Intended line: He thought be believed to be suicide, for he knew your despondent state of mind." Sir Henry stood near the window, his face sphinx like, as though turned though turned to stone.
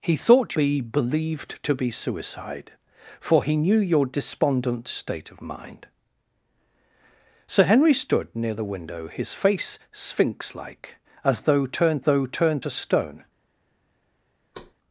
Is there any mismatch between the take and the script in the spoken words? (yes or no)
no